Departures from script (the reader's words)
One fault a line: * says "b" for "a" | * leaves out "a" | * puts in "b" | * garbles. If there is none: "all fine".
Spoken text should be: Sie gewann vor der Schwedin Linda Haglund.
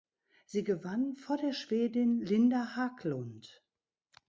all fine